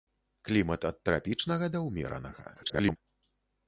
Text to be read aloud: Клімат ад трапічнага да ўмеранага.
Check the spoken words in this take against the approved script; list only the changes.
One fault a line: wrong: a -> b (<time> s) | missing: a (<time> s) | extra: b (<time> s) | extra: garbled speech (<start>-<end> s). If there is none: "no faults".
extra: garbled speech (2.5-3.0 s)